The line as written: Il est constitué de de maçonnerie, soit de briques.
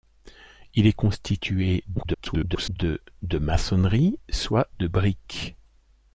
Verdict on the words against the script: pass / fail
fail